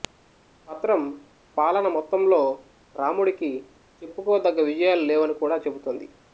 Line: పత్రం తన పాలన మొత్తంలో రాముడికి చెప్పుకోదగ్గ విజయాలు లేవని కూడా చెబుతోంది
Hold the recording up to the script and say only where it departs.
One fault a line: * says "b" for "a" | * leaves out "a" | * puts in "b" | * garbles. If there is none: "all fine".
* leaves out "తన"